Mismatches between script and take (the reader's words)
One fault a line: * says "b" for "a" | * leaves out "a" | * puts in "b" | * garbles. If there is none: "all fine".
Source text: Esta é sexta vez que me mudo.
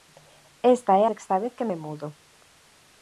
all fine